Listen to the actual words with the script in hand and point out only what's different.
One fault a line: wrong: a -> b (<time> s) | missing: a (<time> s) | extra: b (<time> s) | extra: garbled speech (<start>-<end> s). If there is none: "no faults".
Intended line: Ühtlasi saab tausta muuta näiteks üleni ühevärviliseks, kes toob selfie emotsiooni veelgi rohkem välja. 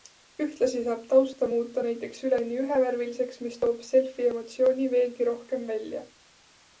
wrong: kes -> mis (3.5 s)